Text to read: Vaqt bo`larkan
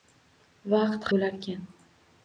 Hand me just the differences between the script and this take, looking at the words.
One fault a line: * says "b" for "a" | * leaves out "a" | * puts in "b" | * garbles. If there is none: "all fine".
all fine